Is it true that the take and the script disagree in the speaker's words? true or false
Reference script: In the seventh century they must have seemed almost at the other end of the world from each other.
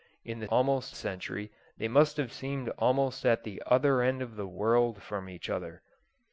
true